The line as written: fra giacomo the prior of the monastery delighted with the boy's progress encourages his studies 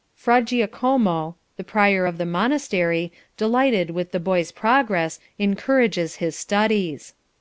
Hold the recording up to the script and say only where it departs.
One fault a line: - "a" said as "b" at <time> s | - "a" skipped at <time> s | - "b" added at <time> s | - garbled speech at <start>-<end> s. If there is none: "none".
none